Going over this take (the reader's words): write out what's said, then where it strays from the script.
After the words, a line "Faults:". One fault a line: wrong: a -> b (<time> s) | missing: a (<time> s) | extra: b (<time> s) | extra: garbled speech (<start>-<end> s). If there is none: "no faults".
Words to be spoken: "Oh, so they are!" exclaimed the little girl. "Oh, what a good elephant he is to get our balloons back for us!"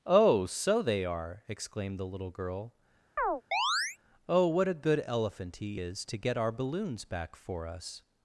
"Oh, so they are!" exclaimed the little girl. "Oh, what a good elephant he is to get our balloons back for us!"
Faults:
no faults